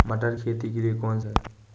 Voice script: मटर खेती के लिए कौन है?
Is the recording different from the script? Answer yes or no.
no